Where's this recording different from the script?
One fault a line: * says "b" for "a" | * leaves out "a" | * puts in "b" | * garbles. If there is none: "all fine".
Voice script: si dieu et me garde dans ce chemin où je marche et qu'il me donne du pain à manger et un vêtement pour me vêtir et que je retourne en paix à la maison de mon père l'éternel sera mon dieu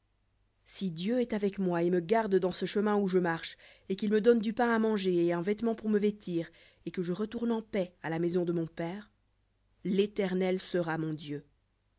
* puts in "est avec moi"